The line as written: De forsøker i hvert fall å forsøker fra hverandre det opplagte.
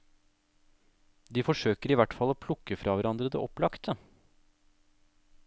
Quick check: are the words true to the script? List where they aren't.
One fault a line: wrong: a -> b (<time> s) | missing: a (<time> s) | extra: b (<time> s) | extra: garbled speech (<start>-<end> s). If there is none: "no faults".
wrong: forsøker -> plukke (2.5 s)